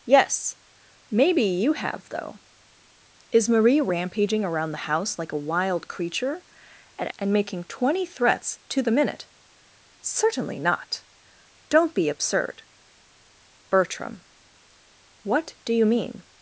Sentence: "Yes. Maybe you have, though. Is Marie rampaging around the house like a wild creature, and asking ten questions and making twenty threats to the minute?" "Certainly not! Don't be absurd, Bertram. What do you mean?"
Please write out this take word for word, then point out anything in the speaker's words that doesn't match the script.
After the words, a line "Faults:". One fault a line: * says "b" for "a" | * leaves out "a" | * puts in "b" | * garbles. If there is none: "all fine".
"Yes. Maybe you have, though. Is Marie rampaging around the house like a wild creature, and and making twenty threats to the minute?" "Certainly not! Don't be absurd, Bertram. What do you mean?"
Faults:
* leaves out "asking ten questions"